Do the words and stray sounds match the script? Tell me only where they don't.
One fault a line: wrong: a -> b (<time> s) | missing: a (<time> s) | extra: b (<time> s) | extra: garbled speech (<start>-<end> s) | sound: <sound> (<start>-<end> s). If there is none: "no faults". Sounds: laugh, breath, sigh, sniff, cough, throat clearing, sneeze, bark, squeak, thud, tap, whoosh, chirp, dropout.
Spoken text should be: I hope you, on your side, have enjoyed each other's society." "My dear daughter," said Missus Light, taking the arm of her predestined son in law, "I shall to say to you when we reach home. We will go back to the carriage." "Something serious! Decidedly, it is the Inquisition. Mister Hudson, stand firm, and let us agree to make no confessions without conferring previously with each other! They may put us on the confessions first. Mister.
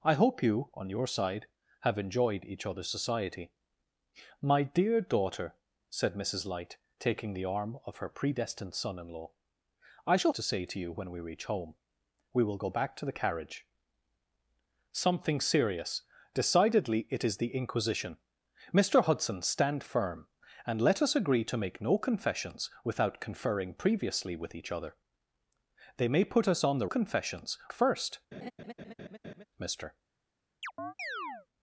sound: laugh (28.3-29.5 s)
sound: chirp (30.6-31.5 s)